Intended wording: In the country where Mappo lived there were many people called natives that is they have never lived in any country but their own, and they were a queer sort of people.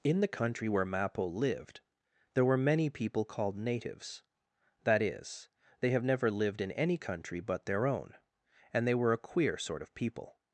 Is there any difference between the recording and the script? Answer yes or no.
no